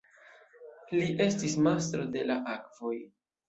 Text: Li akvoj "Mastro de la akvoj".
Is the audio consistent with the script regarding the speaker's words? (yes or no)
no